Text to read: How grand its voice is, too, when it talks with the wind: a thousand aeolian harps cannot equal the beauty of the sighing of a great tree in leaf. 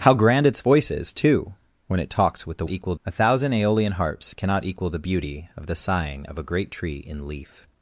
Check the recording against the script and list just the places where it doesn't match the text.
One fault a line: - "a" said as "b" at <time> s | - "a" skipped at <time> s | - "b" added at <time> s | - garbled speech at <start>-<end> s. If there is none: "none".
- "wind" said as "equal" at 2.7 s